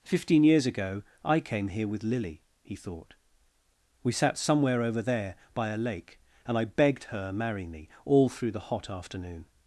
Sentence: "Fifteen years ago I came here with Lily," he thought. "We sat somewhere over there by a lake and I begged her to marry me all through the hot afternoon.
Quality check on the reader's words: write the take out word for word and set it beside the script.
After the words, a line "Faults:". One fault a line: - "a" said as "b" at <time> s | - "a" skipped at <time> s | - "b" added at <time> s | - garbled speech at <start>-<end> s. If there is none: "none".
"Fifteen years ago I came here with Lily," he thought. "We sat somewhere over there by a lake and I begged her marry me all through the hot afternoon.
Faults:
- "to" skipped at 7.3 s